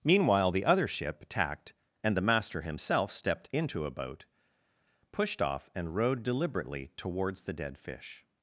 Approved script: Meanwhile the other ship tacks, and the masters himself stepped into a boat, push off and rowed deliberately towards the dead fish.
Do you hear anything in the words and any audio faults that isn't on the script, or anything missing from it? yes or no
yes